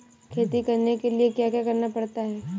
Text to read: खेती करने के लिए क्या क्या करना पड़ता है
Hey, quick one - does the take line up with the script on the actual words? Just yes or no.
yes